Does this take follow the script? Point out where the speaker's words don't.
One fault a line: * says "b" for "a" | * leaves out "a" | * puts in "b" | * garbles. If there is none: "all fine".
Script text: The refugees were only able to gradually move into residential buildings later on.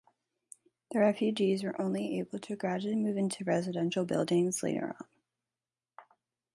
all fine